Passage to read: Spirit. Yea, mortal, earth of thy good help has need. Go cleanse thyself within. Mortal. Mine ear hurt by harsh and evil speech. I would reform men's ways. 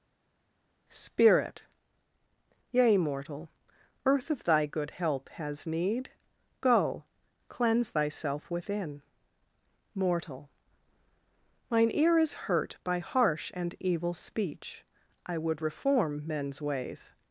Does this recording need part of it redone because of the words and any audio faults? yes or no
yes